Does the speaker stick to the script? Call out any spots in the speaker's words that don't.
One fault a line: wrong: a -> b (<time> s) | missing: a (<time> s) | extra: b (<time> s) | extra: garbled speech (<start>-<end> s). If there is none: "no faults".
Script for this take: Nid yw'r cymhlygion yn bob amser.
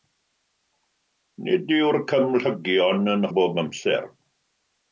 no faults